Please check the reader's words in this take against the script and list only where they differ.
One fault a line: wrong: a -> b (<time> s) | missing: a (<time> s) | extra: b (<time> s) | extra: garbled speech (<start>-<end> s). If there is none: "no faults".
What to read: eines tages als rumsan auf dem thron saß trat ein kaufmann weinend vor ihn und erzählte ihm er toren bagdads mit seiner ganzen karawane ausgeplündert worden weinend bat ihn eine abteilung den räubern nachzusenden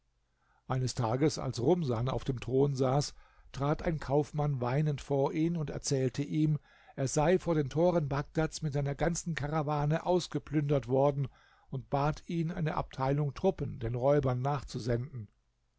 extra: sei vor den (7.1 s)
wrong: weinend -> und (11.7 s)
extra: truppen (13.3 s)